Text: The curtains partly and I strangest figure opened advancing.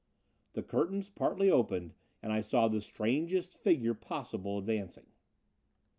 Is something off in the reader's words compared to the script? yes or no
yes